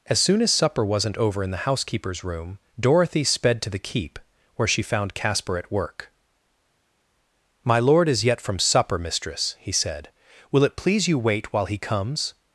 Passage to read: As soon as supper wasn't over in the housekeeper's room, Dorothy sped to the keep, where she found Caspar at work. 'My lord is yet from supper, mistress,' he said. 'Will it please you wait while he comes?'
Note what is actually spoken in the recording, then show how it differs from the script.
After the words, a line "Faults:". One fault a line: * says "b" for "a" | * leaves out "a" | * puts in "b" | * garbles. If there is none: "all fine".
As soon as supper wasn't over in the housekeeper's room, Dorothy sped to the keep, where she found Caspar at work. 'My lord is yet from supper, mistress,' he said. 'Will it please you wait while he comes?'
Faults:
all fine